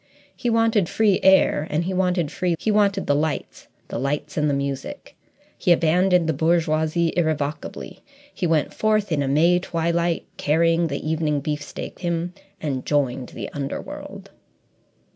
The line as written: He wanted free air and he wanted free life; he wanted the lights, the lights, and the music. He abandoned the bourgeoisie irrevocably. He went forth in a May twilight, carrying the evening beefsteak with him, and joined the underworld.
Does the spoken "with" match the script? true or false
false